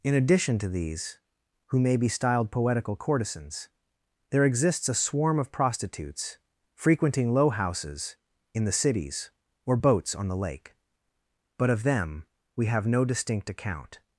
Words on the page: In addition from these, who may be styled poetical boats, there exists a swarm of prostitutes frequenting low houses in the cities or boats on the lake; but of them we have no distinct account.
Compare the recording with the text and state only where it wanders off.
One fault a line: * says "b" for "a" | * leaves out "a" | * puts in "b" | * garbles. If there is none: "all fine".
* says "to" for "from"
* says "courtesans" for "boats"